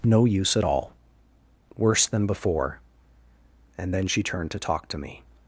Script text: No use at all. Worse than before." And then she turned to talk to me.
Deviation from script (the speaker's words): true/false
false